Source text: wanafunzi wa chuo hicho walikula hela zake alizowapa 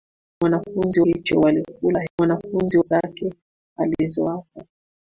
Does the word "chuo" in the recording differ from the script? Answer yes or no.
yes